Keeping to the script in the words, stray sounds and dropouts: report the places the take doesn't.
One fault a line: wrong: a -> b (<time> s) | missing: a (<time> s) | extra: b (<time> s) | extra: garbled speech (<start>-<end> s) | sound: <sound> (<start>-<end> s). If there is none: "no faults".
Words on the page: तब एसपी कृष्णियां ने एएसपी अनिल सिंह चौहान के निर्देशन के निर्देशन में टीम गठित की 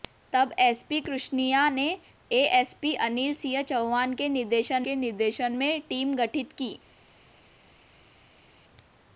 no faults